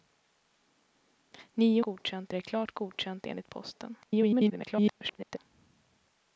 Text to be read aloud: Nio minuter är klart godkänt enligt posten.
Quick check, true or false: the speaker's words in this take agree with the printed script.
false